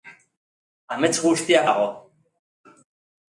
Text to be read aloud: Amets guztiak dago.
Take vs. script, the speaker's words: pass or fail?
pass